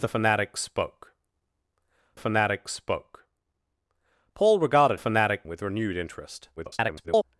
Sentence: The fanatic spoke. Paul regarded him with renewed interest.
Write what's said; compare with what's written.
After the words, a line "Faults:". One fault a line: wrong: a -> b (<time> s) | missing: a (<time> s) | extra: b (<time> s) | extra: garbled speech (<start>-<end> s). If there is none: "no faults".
The fanatic spoke fanatic spoke. Paul regarded fanatic with renewed interest. [garbled]
Faults:
extra: fanatic spoke (2.2 s)
wrong: him -> fanatic (5.0 s)
extra: garbled speech (6.6-7.2 s)